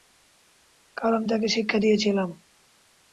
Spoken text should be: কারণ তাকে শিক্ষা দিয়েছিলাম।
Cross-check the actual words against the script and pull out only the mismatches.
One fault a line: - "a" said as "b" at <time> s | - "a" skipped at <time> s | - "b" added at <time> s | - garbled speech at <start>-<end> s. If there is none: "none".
none